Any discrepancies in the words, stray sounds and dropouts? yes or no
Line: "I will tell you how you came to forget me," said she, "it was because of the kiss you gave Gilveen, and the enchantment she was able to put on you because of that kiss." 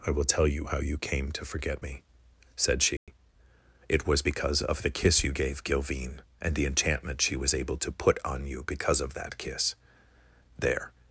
yes